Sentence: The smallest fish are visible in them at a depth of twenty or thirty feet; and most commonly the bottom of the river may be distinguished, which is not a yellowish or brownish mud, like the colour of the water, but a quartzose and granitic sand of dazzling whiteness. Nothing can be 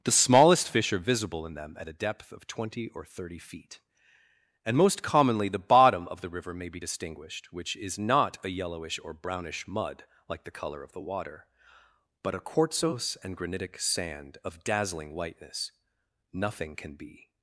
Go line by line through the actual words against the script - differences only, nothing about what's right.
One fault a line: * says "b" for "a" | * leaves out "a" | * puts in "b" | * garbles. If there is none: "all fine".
all fine